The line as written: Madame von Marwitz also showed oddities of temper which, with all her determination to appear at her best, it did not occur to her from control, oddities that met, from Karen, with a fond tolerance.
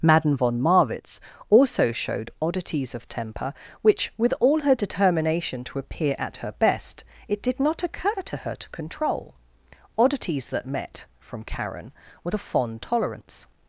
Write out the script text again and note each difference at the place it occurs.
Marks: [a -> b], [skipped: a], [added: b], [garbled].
Madame von Marwitz also showed oddities of temper which, with all her determination to appear at her best, it did not occur to her [from -> to] control, oddities that met, from Karen, with a fond tolerance.